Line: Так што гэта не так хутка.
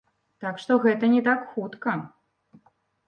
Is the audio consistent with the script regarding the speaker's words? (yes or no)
yes